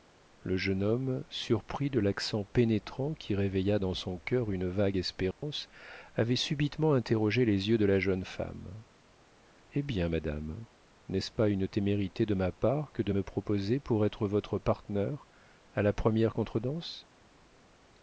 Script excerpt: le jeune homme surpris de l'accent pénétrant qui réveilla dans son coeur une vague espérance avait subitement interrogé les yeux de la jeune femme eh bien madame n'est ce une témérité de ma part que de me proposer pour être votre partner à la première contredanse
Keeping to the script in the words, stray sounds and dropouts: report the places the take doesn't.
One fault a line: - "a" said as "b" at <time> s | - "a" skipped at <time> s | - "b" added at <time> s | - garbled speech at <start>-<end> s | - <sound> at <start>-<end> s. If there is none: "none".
- dropout at 5.3-5.4 s
- "pas" added at 11.3 s